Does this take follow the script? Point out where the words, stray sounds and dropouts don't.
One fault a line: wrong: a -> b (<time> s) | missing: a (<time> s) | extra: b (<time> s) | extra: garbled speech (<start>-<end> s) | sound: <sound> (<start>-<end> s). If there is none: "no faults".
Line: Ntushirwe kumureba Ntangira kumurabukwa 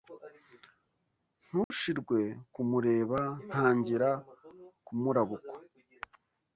sound: dropout (1.6-1.7 s)